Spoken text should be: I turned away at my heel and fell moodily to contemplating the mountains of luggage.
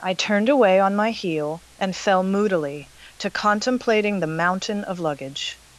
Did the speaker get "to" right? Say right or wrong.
right